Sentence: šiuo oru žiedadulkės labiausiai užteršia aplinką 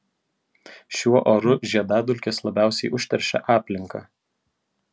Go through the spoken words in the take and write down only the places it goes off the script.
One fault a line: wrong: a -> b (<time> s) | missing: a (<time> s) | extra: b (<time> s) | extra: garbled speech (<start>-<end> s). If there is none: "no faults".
no faults